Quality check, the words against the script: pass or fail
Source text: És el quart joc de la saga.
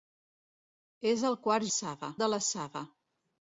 fail